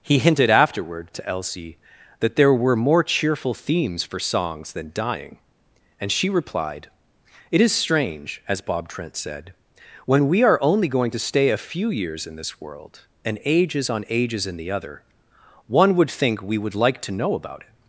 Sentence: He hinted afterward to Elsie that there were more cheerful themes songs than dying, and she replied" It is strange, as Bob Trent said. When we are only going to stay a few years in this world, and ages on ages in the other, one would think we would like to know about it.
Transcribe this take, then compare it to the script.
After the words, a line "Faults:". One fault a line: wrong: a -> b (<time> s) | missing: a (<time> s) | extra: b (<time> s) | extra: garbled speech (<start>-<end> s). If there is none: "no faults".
He hinted afterward to Elsie that there were more cheerful themes for songs than dying, and she replied" It is strange, as Bob Trent said. When we are only going to stay a few years in this world, and ages on ages in the other, one would think we would like to know about it.
Faults:
extra: for (4.0 s)